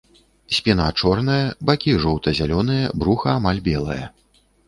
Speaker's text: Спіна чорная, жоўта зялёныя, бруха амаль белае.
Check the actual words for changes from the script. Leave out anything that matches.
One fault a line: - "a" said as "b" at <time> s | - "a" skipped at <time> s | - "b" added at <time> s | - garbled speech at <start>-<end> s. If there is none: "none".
- "бакі" added at 1.7 s